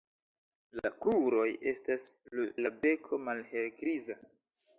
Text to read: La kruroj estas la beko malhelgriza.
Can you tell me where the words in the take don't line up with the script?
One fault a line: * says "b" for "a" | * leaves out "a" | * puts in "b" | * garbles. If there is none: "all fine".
all fine